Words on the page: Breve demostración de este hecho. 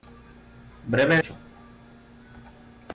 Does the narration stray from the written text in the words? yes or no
yes